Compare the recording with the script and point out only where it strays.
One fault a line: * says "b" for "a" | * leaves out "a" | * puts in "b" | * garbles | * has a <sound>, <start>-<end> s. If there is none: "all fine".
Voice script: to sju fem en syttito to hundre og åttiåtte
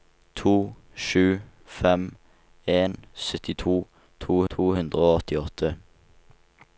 * puts in "to"